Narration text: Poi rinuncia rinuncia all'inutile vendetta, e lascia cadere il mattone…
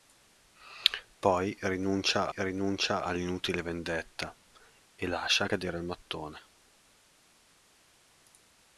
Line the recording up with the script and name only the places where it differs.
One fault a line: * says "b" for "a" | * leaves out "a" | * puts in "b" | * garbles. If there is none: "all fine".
all fine